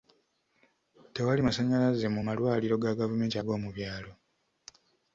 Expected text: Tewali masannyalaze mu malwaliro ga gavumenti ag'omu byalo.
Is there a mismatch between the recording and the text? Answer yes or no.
no